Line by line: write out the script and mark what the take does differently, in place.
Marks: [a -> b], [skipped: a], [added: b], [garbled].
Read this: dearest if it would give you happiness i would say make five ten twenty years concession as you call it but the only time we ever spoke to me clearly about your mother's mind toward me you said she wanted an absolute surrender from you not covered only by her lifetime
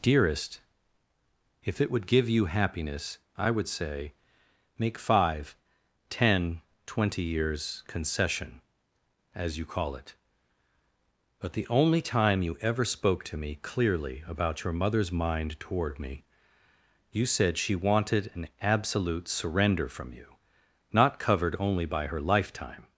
dearest if it would give you happiness i would say make five ten twenty years concession as you call it but the only time [we -> you] ever spoke to me clearly about your mother's mind toward me you said she wanted an absolute surrender from you not covered only by her lifetime